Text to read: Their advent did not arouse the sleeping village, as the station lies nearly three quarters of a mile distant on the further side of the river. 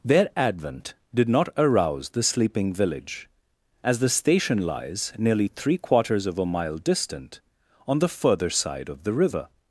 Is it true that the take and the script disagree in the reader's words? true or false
false